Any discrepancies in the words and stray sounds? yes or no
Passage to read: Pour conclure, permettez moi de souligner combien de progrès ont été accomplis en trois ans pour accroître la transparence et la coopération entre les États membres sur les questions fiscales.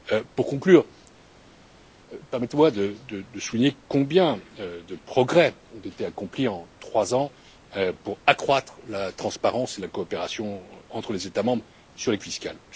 yes